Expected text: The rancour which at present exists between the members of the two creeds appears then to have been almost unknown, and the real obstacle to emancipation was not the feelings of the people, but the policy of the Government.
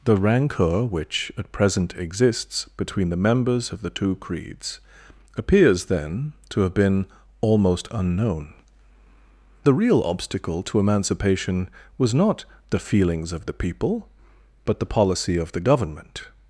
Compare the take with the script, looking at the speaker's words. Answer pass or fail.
fail